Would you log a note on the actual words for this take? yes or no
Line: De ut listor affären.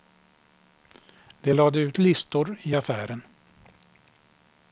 yes